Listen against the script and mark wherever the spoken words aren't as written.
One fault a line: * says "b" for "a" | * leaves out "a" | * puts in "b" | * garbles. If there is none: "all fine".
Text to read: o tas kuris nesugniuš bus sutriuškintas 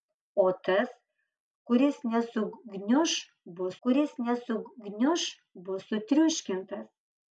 * puts in "kuris nesugniuš bus"